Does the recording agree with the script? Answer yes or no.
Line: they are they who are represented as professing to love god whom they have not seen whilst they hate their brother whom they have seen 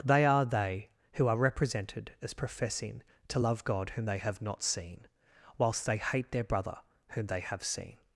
yes